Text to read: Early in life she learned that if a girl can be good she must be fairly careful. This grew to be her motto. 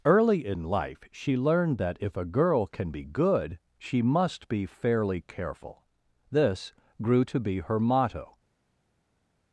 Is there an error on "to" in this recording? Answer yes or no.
no